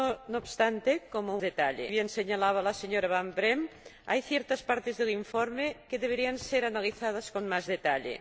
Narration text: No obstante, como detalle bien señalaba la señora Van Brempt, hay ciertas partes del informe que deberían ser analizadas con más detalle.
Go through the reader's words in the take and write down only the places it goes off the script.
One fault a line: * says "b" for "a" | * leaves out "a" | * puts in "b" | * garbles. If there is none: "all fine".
all fine